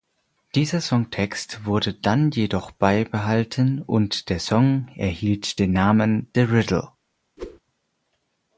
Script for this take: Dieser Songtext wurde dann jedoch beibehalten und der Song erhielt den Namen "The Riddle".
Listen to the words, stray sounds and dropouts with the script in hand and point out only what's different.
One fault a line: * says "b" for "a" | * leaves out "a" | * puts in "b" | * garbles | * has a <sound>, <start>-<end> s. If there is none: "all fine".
* has a whoosh, 7.4-7.6 s